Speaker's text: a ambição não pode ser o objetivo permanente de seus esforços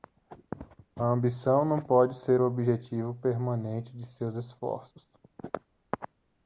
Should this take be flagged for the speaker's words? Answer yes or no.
no